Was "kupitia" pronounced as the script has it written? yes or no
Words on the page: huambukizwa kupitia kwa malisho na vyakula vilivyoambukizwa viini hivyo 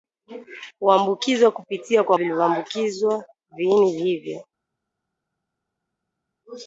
yes